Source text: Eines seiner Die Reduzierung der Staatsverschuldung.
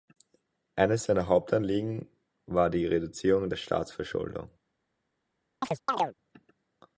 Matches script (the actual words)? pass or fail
fail